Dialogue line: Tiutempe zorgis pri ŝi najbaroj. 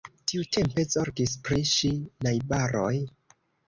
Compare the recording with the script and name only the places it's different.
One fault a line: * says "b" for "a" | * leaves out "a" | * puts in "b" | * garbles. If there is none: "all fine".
all fine